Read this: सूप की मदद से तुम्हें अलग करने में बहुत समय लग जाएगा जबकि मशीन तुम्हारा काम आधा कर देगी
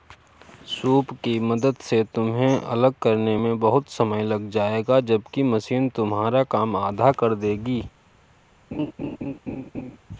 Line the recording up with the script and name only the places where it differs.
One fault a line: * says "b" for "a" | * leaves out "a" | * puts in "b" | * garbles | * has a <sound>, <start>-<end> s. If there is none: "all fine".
* has a laugh, 8.7-10.0 s